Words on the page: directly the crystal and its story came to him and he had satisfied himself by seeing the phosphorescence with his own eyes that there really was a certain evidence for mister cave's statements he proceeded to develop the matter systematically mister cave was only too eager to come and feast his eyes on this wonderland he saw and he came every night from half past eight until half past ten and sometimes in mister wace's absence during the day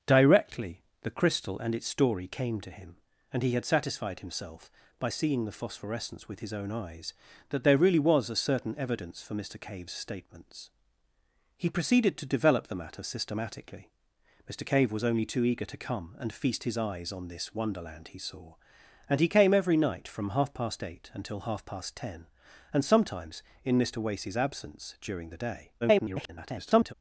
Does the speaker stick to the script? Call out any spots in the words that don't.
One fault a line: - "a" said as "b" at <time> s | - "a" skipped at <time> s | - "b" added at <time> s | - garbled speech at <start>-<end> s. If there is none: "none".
- garbled speech at 25.8-26.9 s